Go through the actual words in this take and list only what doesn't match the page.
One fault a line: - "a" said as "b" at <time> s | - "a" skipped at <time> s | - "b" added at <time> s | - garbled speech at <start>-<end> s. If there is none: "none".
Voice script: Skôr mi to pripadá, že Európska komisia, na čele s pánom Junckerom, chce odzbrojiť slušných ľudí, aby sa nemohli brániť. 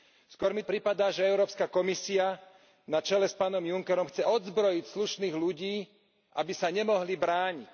- "to" skipped at 0.6 s